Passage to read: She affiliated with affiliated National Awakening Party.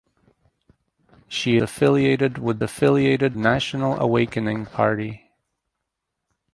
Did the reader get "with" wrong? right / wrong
right